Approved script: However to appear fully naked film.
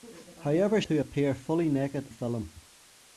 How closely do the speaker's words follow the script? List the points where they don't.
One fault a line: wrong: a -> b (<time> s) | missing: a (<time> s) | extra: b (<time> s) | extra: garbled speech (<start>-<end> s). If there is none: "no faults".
no faults